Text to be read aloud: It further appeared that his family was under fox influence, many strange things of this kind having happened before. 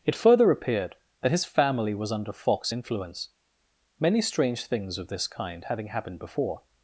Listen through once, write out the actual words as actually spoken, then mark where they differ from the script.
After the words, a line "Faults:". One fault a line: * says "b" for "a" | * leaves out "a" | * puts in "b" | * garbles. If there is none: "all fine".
It further appeared that his family was under fox influence, many strange things of this kind having happened before.
Faults:
all fine